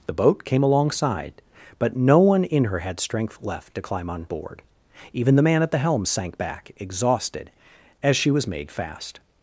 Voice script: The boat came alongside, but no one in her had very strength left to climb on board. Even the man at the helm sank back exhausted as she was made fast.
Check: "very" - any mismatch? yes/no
yes